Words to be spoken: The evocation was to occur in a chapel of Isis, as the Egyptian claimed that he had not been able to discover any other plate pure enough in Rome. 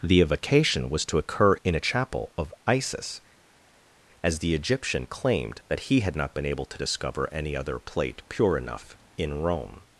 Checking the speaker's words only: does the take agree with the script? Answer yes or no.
yes